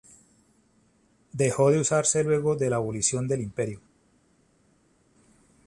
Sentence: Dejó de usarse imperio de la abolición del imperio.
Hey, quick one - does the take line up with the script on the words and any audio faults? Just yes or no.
no